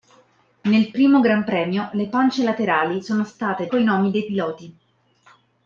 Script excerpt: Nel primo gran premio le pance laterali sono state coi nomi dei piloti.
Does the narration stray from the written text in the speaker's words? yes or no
no